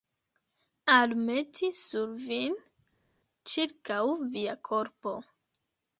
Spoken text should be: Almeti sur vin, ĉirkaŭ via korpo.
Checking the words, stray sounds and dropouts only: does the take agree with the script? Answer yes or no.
yes